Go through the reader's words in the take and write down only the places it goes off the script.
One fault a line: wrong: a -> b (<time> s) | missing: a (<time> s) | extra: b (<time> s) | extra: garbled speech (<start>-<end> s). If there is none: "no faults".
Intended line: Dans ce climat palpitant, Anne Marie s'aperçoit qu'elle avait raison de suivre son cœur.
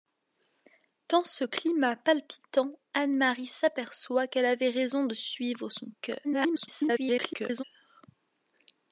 extra: garbled speech (6.2-7.6 s)